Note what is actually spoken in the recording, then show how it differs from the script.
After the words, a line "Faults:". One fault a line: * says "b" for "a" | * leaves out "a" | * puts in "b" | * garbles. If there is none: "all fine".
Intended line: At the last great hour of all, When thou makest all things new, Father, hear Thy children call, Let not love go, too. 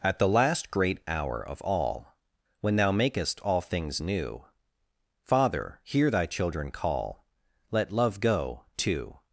At the last great hour of all, When thou makest all things new, Father, hear Thy children call, Let love go, too.
Faults:
* leaves out "not"